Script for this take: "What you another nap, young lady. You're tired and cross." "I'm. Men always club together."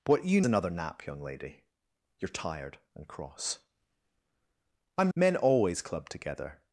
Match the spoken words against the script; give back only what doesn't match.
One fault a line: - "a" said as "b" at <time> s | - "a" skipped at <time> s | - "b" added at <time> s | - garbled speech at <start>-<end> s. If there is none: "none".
none